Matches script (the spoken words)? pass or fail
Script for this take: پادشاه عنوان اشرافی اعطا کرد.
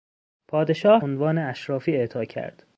pass